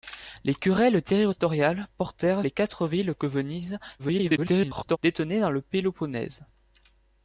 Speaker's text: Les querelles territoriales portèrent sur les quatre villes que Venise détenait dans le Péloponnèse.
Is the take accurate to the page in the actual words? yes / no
no